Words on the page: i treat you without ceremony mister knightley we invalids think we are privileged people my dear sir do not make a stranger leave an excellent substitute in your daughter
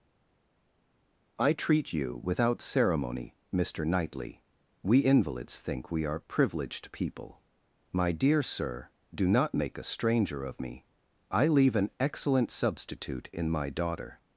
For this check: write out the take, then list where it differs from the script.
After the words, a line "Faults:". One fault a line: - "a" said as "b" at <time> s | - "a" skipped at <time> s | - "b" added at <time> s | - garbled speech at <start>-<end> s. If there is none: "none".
i treat you without ceremony mister knightley we invalids think we are privileged people my dear sir do not make a stranger of me i leave an excellent substitute in my daughter
Faults:
- "of me i" added at 10.4 s
- "your" said as "my" at 13.5 s